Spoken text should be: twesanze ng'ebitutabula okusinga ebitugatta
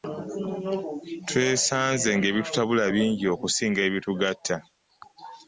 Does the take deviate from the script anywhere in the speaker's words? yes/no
yes